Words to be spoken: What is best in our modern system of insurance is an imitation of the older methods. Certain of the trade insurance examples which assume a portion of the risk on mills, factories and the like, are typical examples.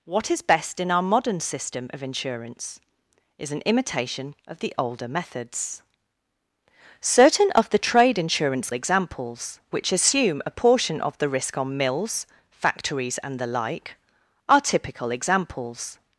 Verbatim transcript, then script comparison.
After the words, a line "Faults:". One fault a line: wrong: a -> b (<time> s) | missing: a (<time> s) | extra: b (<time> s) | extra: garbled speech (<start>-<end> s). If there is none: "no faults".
What is best in our modern system of insurance is an imitation of the older methods. Certain of the trade insurance examples which assume a portion of the risk on mills, factories and the like, are typical examples.
Faults:
no faults